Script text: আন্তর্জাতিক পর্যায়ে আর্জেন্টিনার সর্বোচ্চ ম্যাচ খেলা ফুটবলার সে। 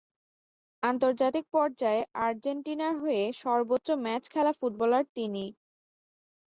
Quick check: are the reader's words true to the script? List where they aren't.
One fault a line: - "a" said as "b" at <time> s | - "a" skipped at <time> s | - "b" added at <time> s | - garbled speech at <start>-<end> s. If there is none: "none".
- "হয়ে" added at 3.0 s
- "সে" said as "তিনি" at 5.2 s